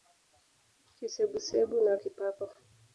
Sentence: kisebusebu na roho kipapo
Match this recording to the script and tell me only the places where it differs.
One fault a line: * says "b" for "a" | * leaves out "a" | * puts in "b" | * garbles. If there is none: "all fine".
* leaves out "roho"